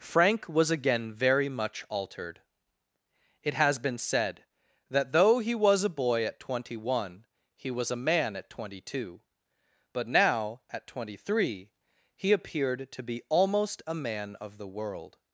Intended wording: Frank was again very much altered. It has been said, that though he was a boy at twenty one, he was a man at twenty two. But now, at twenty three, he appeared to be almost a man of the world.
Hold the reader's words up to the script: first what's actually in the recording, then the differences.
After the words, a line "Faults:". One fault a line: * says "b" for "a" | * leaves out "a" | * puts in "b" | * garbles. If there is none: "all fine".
Frank was again very much altered. It has been said, that though he was a boy at twenty one, he was a man at twenty two. But now, at twenty three, he appeared to be almost a man of the world.
Faults:
all fine